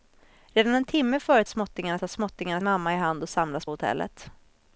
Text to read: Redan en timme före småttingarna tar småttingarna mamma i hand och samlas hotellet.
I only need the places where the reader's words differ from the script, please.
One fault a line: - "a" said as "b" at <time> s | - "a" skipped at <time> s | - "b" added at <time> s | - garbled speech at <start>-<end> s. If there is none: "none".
none